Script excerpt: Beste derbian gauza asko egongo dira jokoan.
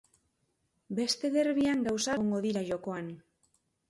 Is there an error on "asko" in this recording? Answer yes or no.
yes